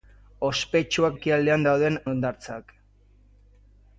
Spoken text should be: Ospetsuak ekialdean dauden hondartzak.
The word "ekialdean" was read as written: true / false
true